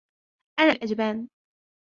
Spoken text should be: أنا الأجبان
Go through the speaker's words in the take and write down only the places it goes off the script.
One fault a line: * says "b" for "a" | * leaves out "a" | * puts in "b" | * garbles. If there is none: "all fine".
all fine